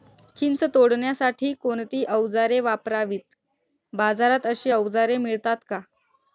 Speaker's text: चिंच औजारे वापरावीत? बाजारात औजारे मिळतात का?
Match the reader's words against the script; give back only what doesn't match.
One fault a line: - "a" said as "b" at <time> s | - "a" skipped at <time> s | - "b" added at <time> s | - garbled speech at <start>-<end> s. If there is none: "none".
- "तोडण्यासाठी कोणती" added at 0.7 s
- "अशी" added at 4.5 s